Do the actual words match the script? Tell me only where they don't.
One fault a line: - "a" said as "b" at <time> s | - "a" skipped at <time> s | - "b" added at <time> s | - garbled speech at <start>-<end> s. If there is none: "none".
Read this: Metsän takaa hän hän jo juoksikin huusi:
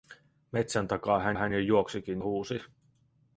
none